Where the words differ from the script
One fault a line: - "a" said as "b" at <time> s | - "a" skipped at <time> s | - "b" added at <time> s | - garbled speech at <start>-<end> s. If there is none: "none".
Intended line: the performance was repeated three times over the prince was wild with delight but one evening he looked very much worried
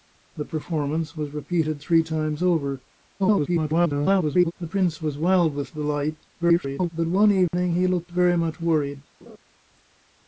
- garbled speech at 3.2-4.5 s
- garbled speech at 6.4-6.9 s